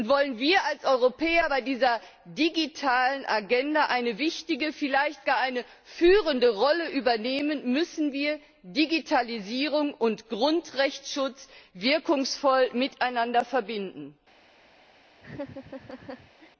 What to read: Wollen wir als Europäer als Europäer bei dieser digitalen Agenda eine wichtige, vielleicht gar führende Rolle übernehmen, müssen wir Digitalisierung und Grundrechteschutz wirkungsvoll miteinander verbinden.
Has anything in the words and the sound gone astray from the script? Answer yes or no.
yes